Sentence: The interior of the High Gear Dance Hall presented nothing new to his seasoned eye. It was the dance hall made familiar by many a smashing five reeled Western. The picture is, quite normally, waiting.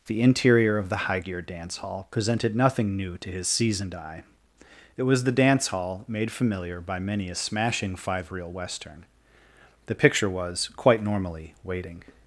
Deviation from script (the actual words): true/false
true